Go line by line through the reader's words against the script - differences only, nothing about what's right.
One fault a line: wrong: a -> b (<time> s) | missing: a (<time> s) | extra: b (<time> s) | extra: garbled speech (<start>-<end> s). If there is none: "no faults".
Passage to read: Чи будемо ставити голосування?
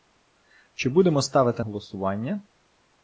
no faults